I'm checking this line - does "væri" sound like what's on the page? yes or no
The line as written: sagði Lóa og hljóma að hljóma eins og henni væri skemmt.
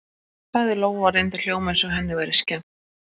yes